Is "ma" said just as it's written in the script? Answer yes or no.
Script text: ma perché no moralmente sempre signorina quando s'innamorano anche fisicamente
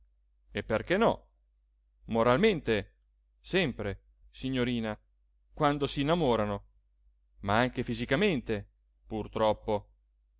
no